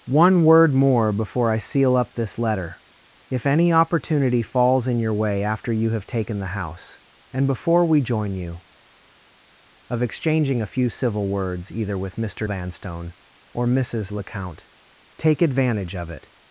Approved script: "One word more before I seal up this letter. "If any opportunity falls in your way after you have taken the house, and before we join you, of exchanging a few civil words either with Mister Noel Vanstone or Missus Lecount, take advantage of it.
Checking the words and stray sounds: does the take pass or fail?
fail